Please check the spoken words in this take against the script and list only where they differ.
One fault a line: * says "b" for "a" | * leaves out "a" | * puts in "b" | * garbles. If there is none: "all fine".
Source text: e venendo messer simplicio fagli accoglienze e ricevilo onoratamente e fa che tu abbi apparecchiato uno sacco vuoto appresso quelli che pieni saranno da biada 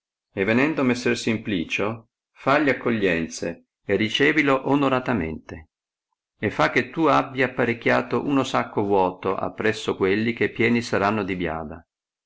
* says "di" for "da"